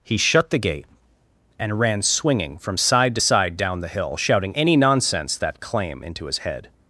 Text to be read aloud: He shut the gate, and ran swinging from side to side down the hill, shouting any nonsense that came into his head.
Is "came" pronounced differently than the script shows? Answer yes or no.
yes